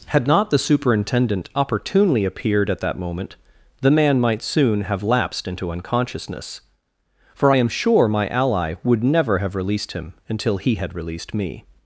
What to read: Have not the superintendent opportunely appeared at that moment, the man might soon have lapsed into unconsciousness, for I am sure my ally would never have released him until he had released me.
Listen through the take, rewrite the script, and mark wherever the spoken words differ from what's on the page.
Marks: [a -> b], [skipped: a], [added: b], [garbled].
[Have -> Had] not the superintendent opportunely appeared at that moment, the man might soon have lapsed into unconsciousness, for I am sure my ally would never have released him until he had released me.